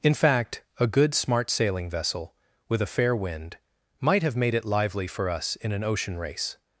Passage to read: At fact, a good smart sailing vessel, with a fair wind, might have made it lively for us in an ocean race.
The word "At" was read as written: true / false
false